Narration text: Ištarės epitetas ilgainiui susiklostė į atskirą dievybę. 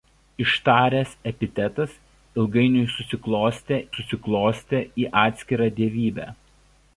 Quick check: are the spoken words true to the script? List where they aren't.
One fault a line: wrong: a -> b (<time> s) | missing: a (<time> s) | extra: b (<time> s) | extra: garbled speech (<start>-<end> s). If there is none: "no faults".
extra: susiklostė (3.9 s)